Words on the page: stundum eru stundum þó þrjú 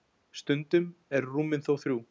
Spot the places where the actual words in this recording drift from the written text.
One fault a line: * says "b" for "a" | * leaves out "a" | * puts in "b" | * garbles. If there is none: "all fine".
* says "rúmin" for "stundum"